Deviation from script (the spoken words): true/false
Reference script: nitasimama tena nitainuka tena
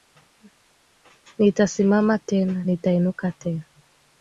false